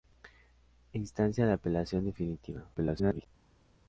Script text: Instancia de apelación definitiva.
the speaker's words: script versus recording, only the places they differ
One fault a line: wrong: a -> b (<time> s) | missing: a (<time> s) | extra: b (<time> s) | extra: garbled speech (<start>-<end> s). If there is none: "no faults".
extra: garbled speech (2.7-3.3 s)